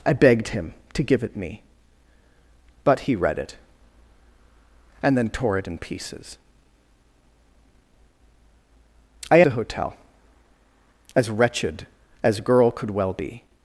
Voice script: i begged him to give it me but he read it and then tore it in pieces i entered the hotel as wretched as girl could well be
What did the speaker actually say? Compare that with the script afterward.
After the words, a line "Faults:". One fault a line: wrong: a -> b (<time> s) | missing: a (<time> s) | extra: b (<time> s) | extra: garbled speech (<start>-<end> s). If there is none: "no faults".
i begged him to give it me but he read it and then tore it in pieces i the hotel as wretched as girl could well be
Faults:
missing: entered (9.4 s)